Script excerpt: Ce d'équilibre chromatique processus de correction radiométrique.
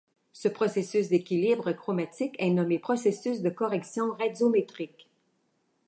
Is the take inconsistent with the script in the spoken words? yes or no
yes